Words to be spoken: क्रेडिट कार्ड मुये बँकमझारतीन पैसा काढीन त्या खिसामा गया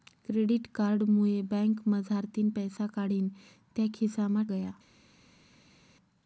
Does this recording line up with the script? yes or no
yes